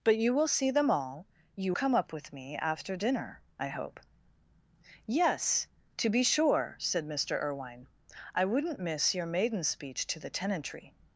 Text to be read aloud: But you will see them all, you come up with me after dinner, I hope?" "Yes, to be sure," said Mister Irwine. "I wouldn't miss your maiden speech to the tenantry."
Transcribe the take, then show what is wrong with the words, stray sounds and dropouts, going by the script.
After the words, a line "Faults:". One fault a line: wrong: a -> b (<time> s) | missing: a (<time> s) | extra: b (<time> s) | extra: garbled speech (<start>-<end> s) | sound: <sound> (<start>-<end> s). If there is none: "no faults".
But you will see them all, you come up with me after dinner, I hope?" "Yes, to be sure," said Mister Irwine. "I wouldn't miss your maiden speech to the tenantry."
Faults:
no faults